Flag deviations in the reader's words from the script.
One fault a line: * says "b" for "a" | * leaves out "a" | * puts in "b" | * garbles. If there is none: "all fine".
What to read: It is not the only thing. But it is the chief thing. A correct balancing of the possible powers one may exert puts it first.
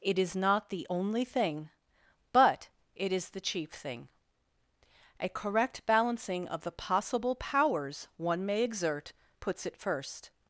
all fine